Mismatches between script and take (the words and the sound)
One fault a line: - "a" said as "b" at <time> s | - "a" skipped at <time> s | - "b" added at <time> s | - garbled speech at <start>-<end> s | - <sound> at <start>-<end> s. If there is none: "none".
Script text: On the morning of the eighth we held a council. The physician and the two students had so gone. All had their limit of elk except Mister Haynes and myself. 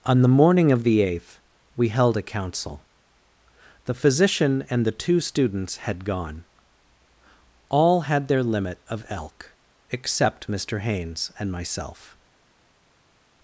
- "so" skipped at 6.0 s